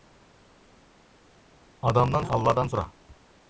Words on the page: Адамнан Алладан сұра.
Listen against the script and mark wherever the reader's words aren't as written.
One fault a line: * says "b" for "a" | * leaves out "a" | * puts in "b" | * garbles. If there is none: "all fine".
all fine